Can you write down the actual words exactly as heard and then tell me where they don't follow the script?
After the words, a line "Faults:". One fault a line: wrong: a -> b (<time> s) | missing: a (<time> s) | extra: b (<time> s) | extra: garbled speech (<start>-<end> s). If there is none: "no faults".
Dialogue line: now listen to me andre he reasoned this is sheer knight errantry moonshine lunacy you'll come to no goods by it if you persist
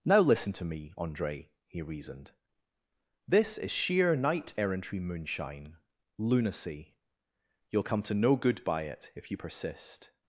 now listen to me andre he reasoned this is sheer knight errantry moonshine lunacy you'll come to no good by it if you persist
Faults:
wrong: goods -> good (8.3 s)